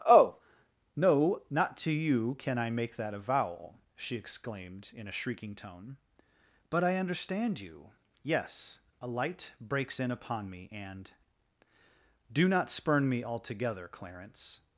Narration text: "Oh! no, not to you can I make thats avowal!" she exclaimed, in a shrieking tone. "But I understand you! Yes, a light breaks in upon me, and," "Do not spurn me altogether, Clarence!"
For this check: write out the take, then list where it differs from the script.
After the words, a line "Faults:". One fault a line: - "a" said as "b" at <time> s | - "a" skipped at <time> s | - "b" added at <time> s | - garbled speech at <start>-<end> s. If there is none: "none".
"Oh! no, not to you can I make that avowal!" she exclaimed, in a shrieking tone. "But I understand you! Yes, a light breaks in upon me, and," "Do not spurn me altogether, Clarence!"
Faults:
- "thats" said as "that" at 3.0 s